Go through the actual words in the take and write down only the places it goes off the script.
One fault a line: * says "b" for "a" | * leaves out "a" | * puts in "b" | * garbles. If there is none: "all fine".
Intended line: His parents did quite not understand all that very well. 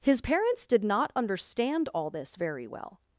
* leaves out "quite"
* says "this" for "that"